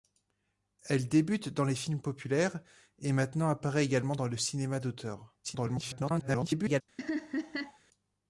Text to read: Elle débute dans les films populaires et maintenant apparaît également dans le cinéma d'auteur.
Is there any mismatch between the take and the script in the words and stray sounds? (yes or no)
yes